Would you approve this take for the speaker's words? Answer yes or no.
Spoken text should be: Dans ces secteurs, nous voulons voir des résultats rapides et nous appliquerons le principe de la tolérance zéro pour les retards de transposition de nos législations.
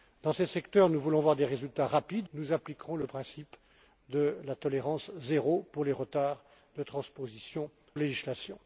no